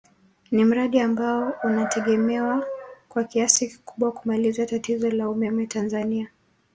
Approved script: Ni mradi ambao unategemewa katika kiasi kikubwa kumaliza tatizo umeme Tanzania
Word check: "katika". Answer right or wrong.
wrong